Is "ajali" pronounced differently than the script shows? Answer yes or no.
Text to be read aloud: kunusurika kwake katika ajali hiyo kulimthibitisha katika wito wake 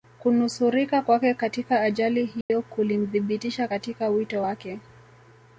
no